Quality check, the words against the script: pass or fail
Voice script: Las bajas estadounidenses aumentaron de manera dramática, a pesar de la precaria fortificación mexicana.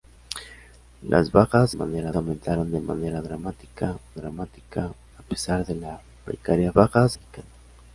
fail